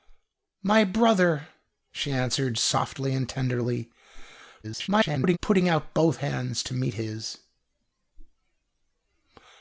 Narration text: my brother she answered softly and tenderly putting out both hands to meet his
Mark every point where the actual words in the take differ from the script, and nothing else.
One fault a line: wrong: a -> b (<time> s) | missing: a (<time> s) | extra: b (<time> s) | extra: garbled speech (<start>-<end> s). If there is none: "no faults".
extra: garbled speech (4.6-5.4 s)